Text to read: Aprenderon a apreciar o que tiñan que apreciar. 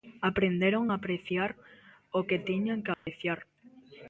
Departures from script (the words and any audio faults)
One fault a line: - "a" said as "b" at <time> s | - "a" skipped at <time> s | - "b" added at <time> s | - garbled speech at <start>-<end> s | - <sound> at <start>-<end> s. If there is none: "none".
- dropout at 2.9-3.1 s